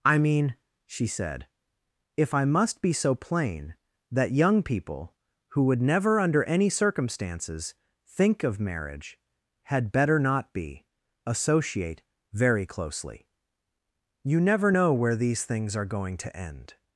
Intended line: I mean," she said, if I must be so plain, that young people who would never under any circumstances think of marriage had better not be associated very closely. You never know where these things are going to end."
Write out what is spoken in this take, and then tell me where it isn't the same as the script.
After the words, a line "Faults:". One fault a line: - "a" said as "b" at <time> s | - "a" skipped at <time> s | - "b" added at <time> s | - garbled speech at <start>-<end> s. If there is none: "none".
I mean," she said, if I must be so plain, that young people who would never under any circumstances think of marriage had better not be associate very closely. You never know where these things are going to end."
Faults:
- "associated" said as "associate" at 11.2 s